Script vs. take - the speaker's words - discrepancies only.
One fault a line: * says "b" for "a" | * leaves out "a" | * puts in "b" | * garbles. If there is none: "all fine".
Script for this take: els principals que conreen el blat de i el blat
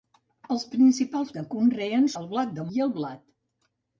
all fine